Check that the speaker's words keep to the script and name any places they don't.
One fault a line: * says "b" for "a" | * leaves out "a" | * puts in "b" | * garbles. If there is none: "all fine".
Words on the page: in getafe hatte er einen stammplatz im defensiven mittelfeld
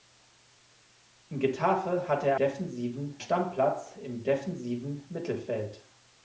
* says "defensiven" for "einen"